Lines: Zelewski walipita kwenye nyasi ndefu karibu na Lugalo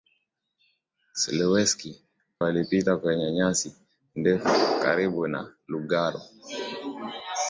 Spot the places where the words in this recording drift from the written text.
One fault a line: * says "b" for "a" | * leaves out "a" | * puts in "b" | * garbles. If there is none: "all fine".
all fine